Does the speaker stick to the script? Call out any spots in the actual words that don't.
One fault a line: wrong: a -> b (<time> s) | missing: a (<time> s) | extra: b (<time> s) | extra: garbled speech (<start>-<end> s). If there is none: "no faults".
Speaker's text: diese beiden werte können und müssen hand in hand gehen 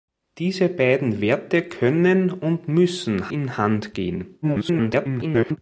missing: hand (3.3 s)
extra: garbled speech (4.4-5.6 s)